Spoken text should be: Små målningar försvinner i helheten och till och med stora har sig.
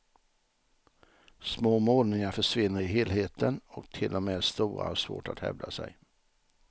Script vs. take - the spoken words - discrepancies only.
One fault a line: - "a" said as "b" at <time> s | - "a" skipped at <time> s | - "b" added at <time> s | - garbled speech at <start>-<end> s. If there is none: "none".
- "svårt att hävda" added at 5.0 s